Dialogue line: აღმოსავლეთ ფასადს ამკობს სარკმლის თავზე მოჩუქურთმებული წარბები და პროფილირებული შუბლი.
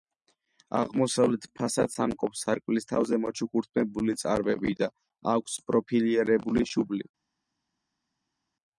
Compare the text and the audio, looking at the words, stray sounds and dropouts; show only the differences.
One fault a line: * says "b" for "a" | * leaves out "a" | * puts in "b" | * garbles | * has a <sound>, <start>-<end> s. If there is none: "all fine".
* puts in "აქვს"